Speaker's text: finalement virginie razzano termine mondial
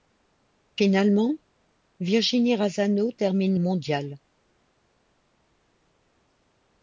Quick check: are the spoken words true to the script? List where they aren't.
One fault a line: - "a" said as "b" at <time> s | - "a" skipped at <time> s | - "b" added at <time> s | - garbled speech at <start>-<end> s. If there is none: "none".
none